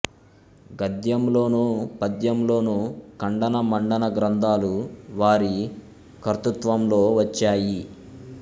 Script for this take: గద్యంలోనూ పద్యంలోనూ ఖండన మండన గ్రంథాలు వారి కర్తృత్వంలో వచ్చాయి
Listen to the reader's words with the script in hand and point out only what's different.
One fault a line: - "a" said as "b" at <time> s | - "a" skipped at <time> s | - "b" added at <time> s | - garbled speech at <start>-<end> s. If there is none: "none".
none